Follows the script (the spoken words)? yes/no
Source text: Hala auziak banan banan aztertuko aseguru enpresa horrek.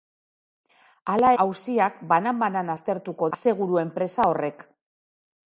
yes